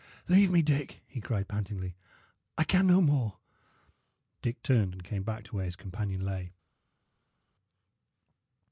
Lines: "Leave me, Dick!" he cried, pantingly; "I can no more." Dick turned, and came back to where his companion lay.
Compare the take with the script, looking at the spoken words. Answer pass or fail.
pass